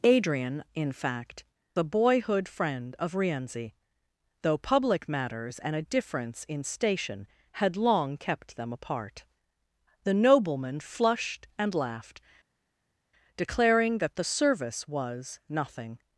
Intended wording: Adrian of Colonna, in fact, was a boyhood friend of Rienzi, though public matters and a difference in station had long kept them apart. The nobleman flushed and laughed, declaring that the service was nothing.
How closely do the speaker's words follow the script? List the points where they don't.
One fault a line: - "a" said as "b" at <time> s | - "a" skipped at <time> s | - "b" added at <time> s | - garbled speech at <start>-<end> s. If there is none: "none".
- "of Colonna" skipped at 0.6 s
- "was" skipped at 1.4 s